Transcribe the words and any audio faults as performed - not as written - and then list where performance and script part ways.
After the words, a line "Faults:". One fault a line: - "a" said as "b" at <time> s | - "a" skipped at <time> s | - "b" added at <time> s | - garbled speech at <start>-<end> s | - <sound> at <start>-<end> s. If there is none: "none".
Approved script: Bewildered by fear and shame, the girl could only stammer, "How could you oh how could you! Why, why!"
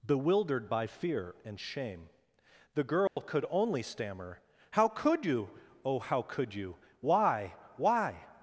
Bewildered by fear and shame, the girl could only stammer, "How could you oh how could you! Why, why!"
Faults:
- dropout at 3.1-3.2 s